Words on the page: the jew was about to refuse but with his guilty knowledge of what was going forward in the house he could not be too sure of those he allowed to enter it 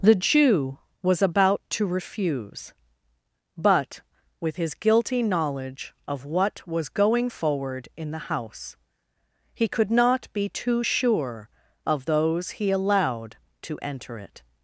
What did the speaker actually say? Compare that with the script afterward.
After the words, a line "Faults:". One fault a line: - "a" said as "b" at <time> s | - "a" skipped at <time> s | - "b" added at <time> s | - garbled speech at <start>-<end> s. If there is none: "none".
the jew was about to refuse but with his guilty knowledge of what was going forward in the house he could not be too sure of those he allowed to enter it
Faults:
none